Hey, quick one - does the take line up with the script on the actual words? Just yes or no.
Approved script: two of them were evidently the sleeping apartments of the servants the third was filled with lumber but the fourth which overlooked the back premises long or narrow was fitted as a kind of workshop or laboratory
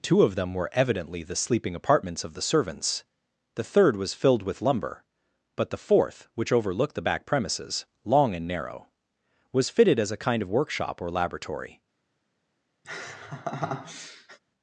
no